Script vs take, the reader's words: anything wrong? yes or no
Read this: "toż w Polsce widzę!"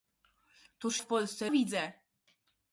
no